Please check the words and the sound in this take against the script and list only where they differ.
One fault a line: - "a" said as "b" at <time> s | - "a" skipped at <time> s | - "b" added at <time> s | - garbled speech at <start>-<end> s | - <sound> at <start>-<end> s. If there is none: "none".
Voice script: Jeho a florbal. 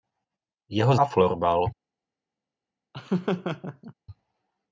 - laugh at 2.9-3.9 s